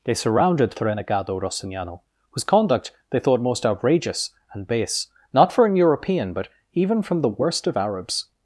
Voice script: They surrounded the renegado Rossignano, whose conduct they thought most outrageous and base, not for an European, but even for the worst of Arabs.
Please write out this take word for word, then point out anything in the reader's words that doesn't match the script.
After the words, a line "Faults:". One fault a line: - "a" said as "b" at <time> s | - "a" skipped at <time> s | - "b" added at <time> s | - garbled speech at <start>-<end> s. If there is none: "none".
They surrounded the renegado Rossignano, whose conduct they thought most outrageous and base, not for an European, but even from the worst of Arabs.
Faults:
- "for" said as "from" at 7.0 s